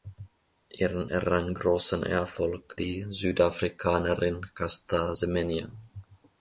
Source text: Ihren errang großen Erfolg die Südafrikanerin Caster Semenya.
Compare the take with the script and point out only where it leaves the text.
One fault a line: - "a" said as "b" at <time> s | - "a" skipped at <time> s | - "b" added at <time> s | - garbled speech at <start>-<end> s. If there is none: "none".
none